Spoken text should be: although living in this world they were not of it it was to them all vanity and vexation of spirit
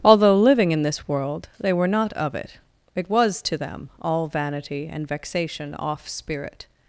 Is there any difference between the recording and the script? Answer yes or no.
yes